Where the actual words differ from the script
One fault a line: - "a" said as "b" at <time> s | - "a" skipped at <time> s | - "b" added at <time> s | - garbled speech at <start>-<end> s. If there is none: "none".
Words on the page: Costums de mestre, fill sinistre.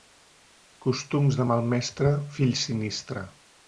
- "mal" added at 1.5 s